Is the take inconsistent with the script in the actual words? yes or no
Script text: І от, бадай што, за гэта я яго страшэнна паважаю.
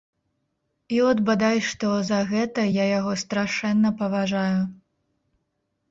no